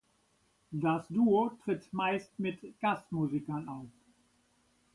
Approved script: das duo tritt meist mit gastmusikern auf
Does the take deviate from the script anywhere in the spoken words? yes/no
no